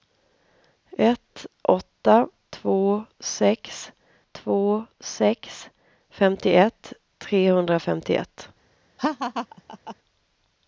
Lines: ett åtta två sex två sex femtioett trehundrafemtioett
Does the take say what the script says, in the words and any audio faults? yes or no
no